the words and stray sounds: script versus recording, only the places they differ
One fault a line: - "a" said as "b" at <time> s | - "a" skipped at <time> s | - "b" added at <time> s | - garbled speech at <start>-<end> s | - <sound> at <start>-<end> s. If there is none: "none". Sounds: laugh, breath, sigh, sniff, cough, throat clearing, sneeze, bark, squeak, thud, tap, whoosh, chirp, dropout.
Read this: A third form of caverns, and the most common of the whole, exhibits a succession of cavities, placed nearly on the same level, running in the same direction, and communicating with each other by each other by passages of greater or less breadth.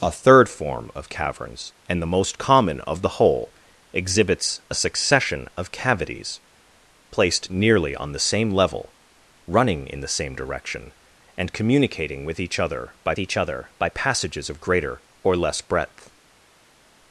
none